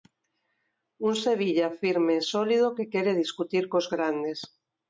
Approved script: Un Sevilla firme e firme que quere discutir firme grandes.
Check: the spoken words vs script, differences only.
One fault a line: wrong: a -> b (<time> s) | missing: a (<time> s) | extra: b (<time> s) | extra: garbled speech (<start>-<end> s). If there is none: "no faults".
wrong: firme -> sólido (2.3 s)
wrong: firme -> cos (3.7 s)